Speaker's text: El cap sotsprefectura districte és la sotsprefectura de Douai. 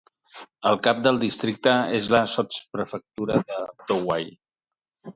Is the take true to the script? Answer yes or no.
no